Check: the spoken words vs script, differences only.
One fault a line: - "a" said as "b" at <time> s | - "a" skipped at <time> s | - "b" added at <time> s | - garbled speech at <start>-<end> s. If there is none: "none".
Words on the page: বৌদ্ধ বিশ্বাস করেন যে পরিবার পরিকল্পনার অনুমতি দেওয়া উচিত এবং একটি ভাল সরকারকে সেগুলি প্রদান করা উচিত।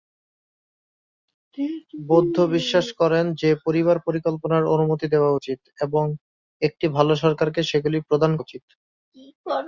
- "করা" skipped at 8.3 s